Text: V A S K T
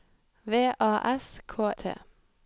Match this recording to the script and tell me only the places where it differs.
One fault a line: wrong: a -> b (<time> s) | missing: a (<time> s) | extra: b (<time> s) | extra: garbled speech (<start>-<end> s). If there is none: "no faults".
no faults